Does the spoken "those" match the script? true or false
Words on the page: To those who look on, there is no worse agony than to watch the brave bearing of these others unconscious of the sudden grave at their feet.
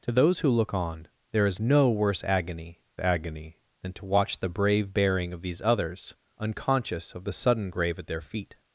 true